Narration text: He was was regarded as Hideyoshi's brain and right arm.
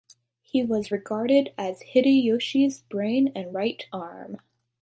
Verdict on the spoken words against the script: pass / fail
fail